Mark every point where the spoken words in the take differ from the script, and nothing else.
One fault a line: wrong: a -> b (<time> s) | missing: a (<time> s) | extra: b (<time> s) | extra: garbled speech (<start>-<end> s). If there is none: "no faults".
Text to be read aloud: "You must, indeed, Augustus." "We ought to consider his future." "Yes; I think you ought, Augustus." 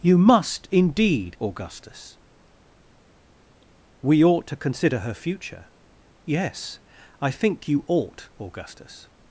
wrong: his -> her (5.0 s)